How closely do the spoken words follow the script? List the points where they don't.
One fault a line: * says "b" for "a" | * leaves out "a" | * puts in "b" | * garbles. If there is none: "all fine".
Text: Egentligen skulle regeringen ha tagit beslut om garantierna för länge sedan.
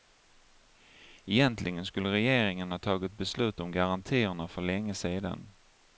all fine